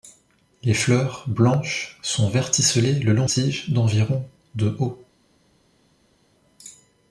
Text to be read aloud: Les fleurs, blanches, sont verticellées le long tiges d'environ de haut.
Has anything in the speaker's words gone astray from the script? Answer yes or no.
no